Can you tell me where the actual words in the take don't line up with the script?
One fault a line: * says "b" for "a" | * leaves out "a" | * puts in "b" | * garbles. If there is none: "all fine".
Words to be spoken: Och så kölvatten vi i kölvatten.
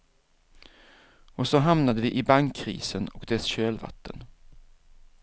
* says "hamnade" for "kölvatten"
* puts in "bankkrisen och dess"